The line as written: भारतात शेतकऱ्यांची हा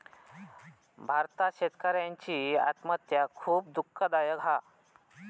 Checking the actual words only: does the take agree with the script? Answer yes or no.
no